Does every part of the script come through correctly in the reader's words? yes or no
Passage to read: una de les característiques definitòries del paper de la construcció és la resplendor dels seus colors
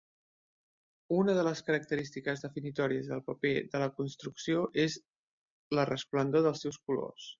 yes